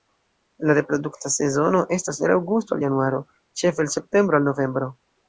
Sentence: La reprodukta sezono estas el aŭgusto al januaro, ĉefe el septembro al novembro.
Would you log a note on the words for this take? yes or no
no